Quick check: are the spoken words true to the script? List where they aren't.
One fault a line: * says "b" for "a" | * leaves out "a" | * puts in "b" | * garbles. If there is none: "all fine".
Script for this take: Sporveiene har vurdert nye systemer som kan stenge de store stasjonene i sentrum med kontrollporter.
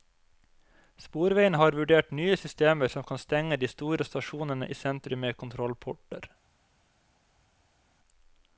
all fine